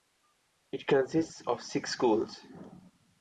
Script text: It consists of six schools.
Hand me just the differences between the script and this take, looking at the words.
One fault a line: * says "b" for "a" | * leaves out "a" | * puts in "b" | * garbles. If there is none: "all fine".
all fine